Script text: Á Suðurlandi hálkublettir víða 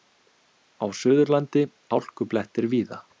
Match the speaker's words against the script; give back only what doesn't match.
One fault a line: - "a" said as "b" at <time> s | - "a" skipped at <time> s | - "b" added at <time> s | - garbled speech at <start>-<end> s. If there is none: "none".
none